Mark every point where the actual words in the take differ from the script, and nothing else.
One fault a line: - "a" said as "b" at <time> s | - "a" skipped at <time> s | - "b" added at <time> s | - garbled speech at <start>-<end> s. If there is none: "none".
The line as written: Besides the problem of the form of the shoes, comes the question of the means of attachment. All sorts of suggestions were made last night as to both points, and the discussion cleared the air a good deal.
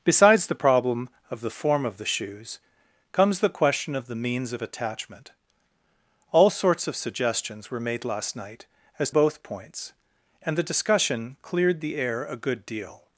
- "to" skipped at 9.1 s